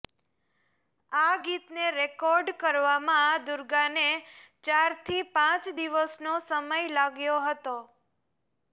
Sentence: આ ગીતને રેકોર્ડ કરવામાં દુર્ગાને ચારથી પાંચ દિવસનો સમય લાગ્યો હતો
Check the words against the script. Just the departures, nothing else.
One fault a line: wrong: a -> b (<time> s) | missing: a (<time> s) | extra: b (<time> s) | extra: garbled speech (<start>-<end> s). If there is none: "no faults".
no faults